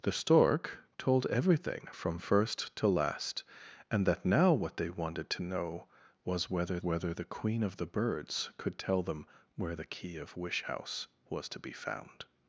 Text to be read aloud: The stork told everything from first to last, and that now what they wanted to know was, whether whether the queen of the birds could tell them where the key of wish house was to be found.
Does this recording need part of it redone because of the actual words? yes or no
no